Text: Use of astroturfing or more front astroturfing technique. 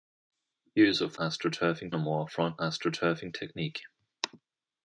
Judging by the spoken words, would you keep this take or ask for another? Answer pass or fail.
pass